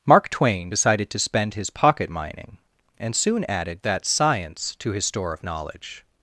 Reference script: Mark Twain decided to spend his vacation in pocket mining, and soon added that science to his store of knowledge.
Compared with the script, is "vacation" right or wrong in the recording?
wrong